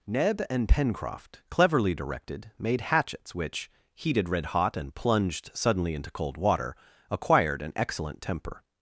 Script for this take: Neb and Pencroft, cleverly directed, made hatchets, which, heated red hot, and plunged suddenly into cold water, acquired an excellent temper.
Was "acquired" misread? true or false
false